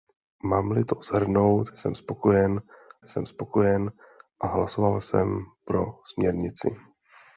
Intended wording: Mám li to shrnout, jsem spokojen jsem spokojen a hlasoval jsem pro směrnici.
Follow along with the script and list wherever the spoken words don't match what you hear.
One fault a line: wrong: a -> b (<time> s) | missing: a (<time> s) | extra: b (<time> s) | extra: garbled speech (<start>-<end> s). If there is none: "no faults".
no faults